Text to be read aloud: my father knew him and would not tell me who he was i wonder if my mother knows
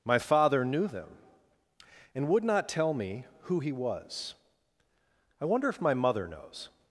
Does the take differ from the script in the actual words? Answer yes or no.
yes